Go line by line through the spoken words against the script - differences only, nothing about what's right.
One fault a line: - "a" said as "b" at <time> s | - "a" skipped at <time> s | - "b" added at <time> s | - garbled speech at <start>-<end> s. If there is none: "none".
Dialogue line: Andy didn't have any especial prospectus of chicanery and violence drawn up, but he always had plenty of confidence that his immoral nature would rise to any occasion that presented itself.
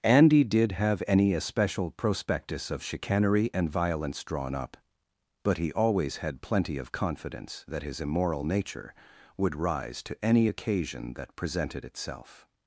- "didn't" said as "did" at 0.4 s